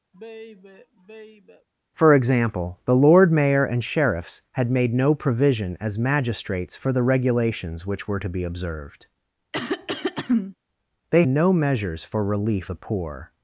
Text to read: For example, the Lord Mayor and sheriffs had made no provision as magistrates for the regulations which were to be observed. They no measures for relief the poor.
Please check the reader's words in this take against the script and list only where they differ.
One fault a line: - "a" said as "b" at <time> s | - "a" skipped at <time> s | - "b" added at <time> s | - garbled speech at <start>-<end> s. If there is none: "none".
none